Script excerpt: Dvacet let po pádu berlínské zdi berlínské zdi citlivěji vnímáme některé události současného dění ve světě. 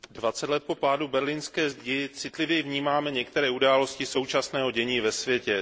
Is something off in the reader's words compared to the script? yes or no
yes